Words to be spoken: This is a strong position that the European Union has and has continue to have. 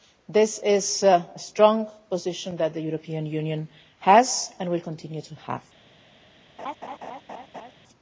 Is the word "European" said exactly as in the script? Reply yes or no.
yes